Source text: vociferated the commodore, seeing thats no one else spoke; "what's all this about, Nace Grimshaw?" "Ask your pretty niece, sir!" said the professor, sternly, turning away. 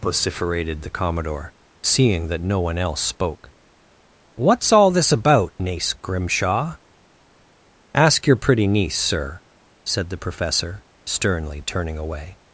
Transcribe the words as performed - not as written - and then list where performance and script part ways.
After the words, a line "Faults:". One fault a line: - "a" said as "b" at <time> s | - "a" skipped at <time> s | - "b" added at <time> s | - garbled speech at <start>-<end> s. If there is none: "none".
vociferated the commodore, seeing that no one else spoke; "what's all this about, Nace Grimshaw?" "Ask your pretty niece, sir!" said the professor, sternly, turning away.
Faults:
- "thats" said as "that" at 2.3 s